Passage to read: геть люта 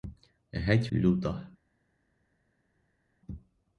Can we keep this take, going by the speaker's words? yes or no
yes